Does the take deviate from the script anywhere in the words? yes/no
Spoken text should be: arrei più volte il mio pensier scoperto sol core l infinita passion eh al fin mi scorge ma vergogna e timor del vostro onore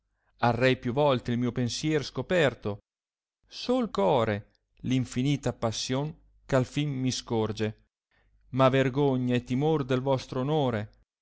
no